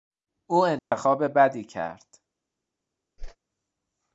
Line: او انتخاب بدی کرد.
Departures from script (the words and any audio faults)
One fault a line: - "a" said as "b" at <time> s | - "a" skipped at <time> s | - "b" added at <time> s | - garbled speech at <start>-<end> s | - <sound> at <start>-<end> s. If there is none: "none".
- dropout at 0.8-0.9 s
- whoosh at 3.2-3.4 s